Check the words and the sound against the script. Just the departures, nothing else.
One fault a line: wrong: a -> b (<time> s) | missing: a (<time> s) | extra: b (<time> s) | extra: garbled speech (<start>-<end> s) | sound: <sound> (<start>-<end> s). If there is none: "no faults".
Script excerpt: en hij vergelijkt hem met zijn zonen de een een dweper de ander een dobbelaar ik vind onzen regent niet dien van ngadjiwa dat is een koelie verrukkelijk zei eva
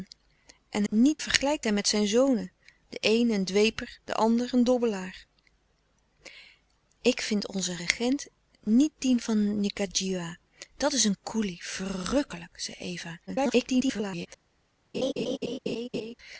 wrong: hij -> niet (0.9 s)
extra: garbled speech (13.3-14.3 s)
sound: laugh (14.9-16.1 s)